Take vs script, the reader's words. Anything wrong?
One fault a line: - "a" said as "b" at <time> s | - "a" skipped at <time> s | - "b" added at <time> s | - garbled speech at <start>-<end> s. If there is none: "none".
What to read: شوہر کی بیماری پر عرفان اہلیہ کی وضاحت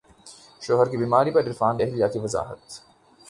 none